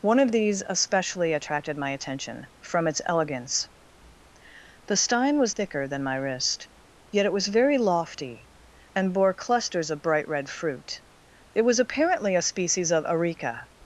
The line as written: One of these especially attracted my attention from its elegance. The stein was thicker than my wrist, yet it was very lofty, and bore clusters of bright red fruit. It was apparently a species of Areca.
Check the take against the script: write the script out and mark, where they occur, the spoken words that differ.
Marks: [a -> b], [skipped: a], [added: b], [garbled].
One of these especially attracted my attention from its elegance. The stein was thicker than my wrist, yet it was very lofty, and bore clusters of bright red fruit. It was apparently a species of Areca.